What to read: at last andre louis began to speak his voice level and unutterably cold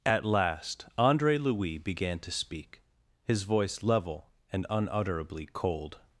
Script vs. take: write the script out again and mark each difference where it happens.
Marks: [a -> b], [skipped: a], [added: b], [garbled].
at last andre louis began to speak his voice level and unutterably cold